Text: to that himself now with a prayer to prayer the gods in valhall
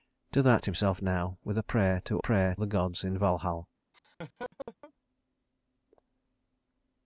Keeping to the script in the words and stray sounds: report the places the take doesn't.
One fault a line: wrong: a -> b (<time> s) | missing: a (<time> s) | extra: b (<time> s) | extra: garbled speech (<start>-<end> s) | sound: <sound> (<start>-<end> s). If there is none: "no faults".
sound: laugh (3.9-4.9 s)